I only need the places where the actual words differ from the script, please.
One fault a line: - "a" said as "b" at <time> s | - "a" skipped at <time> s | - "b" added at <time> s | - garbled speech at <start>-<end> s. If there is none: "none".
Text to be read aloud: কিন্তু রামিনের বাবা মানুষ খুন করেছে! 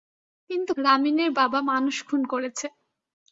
none